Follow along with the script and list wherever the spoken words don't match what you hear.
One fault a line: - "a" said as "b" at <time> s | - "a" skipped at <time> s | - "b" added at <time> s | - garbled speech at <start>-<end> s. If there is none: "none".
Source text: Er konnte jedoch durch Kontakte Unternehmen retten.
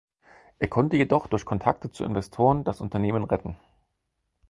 - "zu Investoren das" added at 1.9 s